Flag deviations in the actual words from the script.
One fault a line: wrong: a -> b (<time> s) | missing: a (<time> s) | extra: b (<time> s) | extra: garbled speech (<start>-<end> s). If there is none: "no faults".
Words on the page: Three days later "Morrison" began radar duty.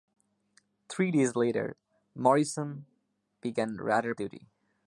no faults